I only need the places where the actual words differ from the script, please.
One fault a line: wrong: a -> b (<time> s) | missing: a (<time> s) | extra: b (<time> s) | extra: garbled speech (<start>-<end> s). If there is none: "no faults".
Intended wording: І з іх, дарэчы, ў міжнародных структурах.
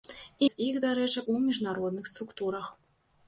no faults